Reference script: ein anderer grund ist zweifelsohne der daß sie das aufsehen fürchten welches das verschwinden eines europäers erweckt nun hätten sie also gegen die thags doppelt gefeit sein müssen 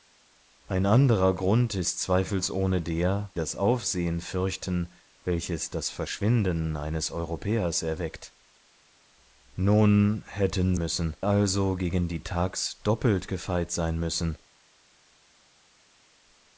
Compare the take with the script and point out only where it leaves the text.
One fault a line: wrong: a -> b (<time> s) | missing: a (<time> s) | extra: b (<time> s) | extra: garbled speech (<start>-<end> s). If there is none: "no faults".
missing: daß sie (3.3 s)
wrong: sie -> müssen (10.8 s)